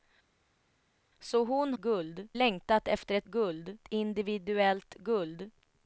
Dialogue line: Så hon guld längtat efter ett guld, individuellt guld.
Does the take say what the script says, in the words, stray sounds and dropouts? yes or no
yes